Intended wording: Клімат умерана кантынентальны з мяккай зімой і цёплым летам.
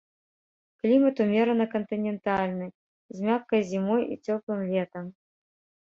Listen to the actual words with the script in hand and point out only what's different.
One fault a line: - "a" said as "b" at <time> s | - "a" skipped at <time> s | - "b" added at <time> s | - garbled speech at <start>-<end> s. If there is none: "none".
none